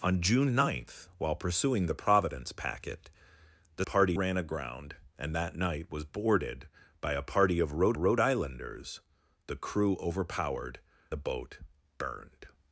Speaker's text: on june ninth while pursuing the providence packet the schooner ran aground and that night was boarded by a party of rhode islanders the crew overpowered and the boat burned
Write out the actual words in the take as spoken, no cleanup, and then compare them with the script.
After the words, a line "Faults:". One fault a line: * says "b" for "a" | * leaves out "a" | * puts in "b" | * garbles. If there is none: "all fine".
on june ninth while pursuing the providence packet the party ran aground and that night was boarded by a party of rhode rhode islanders the crew overpowered the boat burned
Faults:
* says "party" for "schooner"
* puts in "rhode"
* leaves out "and"